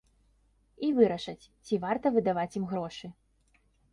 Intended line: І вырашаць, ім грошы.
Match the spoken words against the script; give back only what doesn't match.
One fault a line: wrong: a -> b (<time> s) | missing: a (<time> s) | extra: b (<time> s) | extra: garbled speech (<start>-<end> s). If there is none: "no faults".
extra: ці варта выдаваць (1.7 s)